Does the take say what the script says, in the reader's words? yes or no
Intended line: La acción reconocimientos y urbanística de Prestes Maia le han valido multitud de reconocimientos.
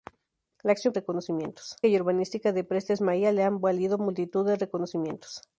yes